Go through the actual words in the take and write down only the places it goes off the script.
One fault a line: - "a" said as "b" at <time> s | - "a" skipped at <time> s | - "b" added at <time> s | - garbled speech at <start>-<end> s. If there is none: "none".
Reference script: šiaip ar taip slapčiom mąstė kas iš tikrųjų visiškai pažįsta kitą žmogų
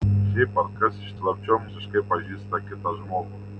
- "taip slapčiom mąstė" skipped at 0.7 s
- "tikrųjų" said as "slapčiom" at 1.2 s